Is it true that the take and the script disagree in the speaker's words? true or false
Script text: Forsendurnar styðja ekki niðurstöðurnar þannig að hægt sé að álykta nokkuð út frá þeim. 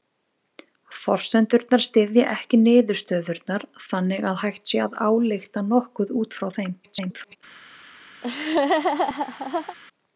true